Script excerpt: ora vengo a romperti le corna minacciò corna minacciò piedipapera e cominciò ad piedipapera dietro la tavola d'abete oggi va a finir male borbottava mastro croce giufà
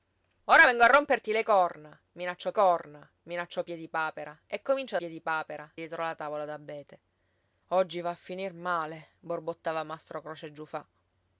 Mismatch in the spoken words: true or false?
false